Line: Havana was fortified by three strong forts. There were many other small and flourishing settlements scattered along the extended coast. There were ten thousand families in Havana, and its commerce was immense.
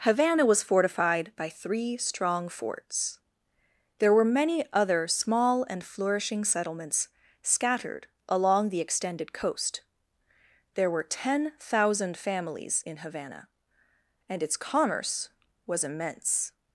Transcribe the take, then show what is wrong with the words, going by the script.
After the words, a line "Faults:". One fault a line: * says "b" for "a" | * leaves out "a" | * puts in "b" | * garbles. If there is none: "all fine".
Havana was fortified by three strong forts. There were many other small and flourishing settlements scattered along the extended coast. There were ten thousand families in Havana, and its commerce was immense.
Faults:
all fine